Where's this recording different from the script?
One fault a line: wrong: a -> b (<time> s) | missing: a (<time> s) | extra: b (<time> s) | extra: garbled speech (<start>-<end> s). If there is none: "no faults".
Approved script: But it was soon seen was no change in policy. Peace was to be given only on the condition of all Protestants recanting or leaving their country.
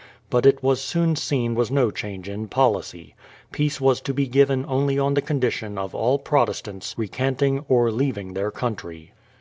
no faults